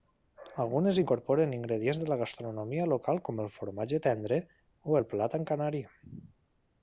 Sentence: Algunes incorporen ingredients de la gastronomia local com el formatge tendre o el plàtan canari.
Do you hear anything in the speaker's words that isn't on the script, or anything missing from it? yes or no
no